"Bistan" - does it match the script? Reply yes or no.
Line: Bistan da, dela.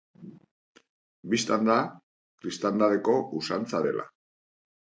yes